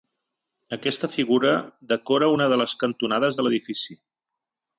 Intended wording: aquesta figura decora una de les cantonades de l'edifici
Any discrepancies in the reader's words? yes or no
no